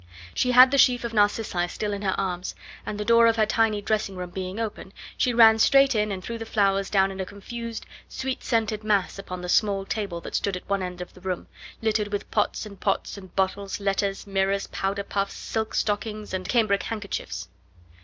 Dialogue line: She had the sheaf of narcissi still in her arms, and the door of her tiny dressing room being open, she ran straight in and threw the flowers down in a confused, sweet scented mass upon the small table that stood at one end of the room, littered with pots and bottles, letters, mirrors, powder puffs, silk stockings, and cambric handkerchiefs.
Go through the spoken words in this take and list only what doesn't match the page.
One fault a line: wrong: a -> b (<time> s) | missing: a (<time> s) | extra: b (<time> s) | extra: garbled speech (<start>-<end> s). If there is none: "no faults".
extra: pots and (12.8 s)